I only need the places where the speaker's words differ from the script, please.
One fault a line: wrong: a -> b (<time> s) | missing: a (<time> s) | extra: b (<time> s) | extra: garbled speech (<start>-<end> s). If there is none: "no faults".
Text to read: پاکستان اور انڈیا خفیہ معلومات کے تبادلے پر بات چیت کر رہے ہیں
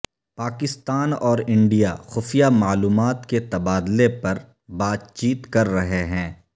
no faults